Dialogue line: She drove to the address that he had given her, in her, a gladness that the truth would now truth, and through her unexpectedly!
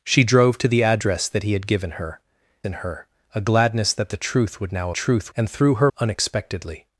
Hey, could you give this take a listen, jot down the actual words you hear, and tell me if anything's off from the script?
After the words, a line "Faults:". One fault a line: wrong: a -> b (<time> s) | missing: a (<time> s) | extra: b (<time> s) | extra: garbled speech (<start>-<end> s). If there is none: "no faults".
She drove to the address that he had given her, in her, a gladness that the truth would now truth, and through her unexpectedly!
Faults:
no faults